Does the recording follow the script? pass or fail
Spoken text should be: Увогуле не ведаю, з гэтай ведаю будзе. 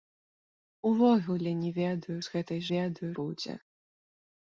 pass